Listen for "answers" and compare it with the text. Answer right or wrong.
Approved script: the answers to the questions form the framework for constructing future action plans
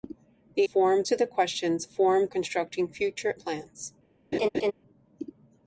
wrong